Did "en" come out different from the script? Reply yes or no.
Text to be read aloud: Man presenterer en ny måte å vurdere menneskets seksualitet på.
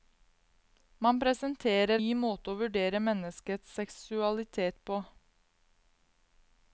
yes